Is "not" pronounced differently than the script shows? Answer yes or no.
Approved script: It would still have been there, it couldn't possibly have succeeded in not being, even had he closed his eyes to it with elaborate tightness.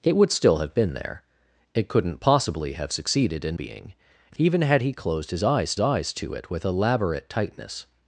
yes